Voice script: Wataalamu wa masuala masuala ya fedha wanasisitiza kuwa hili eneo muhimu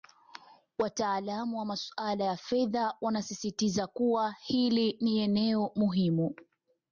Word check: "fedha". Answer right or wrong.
right